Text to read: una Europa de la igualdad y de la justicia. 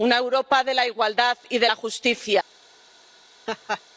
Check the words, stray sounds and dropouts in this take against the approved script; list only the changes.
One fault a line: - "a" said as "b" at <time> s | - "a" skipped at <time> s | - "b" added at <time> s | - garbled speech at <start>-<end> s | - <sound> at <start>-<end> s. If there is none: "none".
- laugh at 3.5-3.8 s